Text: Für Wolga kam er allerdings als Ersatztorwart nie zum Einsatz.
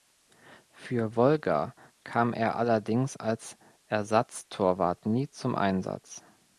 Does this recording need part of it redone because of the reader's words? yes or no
no